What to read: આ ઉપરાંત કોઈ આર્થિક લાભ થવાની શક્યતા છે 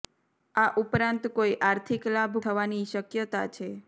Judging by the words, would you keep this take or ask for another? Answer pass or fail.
pass